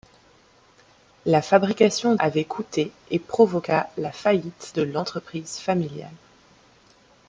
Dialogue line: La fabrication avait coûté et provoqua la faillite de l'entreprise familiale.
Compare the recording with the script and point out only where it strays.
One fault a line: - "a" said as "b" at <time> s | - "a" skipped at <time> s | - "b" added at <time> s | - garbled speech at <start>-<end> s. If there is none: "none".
none